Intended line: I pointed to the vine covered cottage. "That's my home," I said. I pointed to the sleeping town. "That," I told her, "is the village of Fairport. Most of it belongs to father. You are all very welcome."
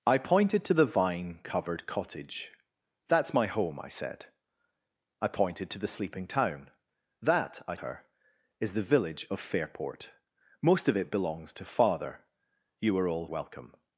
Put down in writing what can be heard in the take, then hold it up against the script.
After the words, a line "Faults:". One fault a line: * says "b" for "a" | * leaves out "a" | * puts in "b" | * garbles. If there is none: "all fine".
I pointed to the vine covered cottage. "That's my home," I said. I pointed to the sleeping town. "That," I her, "is the village of Fairport. Most of it belongs to father. You are all welcome."
Faults:
* leaves out "told"
* leaves out "very"